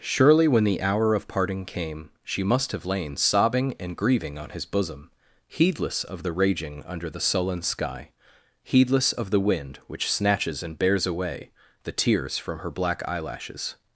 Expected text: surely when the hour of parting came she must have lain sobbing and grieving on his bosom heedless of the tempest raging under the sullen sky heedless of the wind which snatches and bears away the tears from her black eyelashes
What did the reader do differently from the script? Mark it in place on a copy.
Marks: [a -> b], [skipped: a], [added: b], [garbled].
surely when the hour of parting came she must have lain sobbing and grieving on his bosom heedless of the [skipped: tempest] raging under the sullen sky heedless of the wind which snatches and bears away the tears from her black eyelashes